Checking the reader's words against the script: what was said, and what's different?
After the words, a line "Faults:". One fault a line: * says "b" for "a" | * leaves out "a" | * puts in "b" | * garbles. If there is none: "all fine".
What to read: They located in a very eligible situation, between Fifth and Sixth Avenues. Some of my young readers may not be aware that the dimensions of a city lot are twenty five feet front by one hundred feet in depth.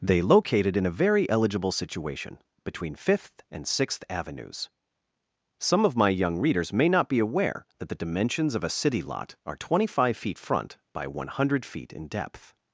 They located in a very eligible situation, between Fifth and Sixth Avenues. Some of my young readers may not be aware that the dimensions of a city lot are twenty five feet front by one hundred feet in depth.
Faults:
all fine